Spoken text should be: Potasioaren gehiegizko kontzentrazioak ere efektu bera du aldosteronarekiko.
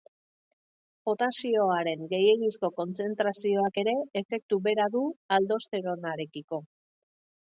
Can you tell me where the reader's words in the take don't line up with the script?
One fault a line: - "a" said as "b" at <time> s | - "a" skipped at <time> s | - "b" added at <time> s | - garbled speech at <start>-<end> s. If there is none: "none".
none